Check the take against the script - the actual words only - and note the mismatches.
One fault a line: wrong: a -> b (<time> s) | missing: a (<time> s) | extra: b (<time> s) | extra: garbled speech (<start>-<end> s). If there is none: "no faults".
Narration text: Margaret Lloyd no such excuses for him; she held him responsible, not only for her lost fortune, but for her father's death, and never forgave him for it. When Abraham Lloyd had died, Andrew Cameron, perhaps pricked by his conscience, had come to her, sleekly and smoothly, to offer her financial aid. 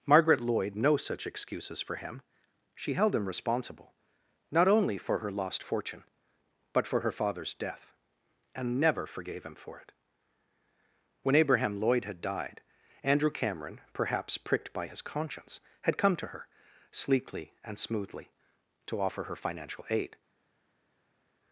no faults